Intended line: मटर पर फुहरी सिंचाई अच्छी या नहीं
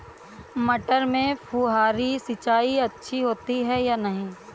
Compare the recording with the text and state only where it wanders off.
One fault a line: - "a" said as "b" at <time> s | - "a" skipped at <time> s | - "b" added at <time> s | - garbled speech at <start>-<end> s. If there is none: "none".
- "पर" said as "में" at 1.1 s
- "होती है" added at 3.2 s